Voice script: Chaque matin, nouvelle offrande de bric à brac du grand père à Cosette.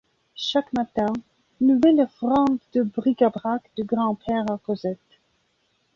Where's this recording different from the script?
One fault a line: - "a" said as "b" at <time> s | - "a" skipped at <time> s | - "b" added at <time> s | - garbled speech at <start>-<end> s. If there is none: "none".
none